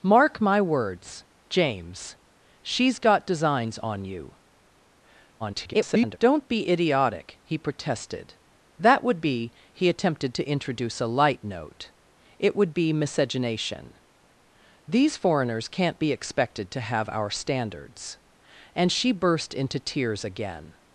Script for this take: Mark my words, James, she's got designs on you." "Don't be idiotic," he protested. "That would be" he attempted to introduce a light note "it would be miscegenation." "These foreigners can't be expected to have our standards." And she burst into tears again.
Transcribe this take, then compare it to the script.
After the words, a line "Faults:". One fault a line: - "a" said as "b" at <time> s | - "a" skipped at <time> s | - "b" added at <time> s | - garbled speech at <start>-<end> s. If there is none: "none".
Mark my words, James, she's got designs on you." [garbled] "Don't be idiotic," he protested. "That would be" he attempted to introduce a light note "it would be miscegenation." "These foreigners can't be expected to have our standards." And she burst into tears again.
Faults:
- garbled speech at 5.4-6.2 s